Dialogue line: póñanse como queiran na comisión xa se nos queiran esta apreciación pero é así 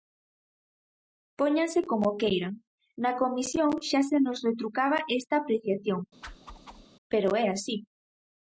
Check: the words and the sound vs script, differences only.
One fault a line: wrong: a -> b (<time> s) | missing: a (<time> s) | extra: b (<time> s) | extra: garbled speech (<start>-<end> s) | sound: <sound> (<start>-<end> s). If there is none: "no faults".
wrong: queiran -> retrucaba (4.5 s)
sound: whoosh (6.2-6.9 s)